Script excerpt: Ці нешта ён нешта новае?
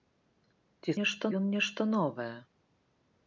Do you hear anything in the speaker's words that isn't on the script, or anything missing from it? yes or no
no